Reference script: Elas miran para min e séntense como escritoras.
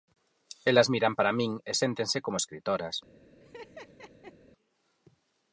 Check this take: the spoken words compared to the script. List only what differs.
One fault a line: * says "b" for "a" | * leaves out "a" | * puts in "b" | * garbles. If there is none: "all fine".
all fine